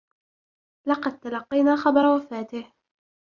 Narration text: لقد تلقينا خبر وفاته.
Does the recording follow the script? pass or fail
pass